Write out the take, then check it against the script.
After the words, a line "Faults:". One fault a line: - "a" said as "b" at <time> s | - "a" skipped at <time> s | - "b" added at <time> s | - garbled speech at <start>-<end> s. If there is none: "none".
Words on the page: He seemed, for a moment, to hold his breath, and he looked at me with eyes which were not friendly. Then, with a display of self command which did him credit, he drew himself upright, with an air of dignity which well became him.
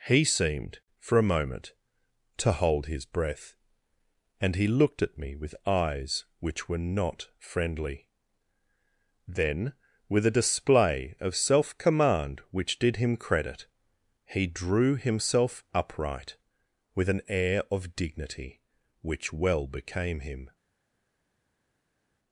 He seemed, for a moment, to hold his breath, and he looked at me with eyes which were not friendly. Then, with a display of self command which did him credit, he drew himself upright, with an air of dignity which well became him.
Faults:
none